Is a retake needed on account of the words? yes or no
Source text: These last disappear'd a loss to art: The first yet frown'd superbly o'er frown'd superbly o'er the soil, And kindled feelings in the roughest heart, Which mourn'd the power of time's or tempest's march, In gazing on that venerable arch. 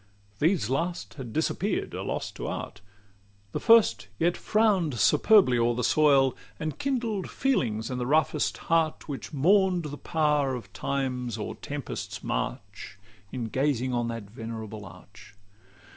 yes